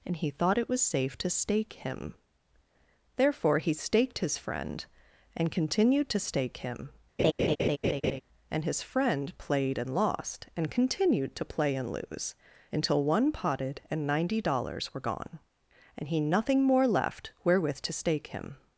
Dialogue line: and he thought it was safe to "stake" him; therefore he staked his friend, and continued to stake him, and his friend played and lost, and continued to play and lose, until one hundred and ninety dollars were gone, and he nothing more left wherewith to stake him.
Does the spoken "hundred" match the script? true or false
false